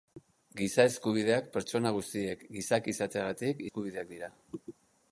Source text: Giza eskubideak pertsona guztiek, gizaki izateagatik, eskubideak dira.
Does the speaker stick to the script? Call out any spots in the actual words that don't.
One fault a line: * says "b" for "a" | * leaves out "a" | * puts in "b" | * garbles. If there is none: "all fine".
all fine